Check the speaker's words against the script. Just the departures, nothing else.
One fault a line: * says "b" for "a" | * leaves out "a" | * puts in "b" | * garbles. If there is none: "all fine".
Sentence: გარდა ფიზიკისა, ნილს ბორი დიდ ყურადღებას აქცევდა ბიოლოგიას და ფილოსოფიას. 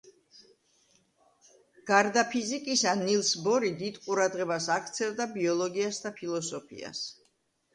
all fine